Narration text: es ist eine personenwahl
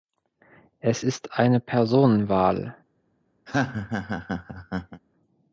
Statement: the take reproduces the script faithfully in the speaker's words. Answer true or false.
true